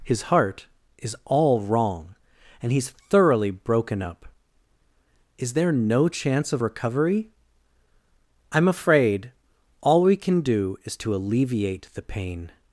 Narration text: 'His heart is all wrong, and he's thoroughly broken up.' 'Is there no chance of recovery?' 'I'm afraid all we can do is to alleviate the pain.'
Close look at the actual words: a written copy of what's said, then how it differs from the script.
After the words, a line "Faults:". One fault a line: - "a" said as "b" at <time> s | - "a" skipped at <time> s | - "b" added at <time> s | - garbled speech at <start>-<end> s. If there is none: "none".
'His heart is all wrong, and he's thoroughly broken up.' 'Is there no chance of recovery?' 'I'm afraid all we can do is to alleviate the pain.'
Faults:
none